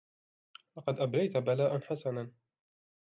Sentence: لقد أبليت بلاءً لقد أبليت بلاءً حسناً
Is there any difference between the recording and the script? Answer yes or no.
yes